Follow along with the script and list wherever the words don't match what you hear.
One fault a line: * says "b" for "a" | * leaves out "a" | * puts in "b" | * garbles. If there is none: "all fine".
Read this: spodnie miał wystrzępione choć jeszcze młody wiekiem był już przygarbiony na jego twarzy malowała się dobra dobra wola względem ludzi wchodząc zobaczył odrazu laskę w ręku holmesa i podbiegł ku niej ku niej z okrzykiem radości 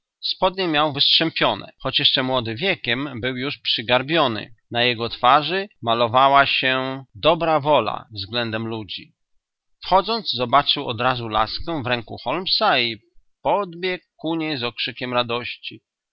* leaves out "dobra"
* leaves out "ku niej"